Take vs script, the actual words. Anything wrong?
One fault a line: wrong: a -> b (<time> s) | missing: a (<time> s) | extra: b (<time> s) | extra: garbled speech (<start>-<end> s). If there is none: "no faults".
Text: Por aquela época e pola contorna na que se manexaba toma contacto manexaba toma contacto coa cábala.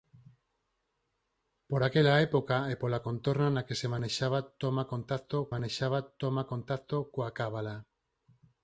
no faults